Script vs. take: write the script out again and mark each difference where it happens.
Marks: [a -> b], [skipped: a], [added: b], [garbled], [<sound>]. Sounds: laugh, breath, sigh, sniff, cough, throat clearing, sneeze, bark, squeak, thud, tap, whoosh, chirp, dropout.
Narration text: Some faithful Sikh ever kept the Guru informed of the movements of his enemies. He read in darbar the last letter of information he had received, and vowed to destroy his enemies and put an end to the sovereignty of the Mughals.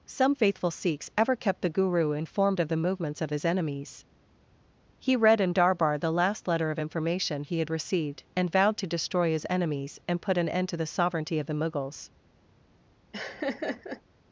Some faithful [Sikh -> Sikhs] ever kept the Guru informed of the movements of his enemies. He read in darbar the last letter of information he had received, and vowed to destroy his enemies and put an end to the sovereignty of the Mughals. [laugh]